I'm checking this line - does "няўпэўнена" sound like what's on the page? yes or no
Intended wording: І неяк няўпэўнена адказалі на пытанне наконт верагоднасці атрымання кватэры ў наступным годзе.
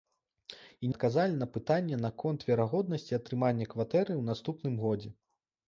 no